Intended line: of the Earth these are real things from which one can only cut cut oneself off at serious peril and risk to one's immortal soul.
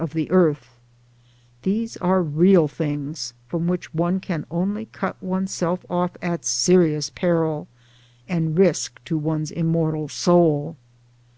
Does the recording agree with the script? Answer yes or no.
no